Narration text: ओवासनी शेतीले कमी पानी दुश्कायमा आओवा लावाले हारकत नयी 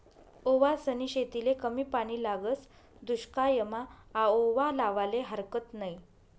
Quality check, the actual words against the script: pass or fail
fail